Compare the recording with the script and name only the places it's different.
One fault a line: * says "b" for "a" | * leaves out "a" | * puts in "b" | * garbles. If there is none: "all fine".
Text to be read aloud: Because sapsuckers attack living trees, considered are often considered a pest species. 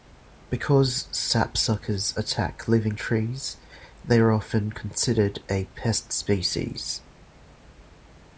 * says "they" for "considered"